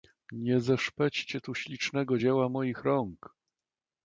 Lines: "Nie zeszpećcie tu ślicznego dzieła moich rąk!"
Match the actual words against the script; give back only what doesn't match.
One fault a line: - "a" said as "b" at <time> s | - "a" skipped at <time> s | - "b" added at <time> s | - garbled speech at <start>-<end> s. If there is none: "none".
none